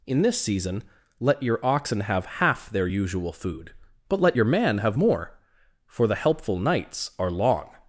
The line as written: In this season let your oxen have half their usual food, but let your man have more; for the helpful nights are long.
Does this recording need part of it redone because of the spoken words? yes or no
no